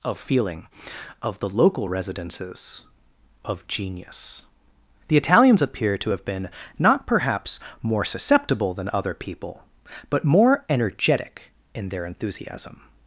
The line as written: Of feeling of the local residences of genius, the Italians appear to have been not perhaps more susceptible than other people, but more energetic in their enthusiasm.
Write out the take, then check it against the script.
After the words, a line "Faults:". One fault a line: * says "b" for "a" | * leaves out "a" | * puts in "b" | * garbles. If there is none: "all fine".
Of feeling of the local residences of genius, the Italians appear to have been not perhaps more susceptible than other people, but more energetic in their enthusiasm.
Faults:
all fine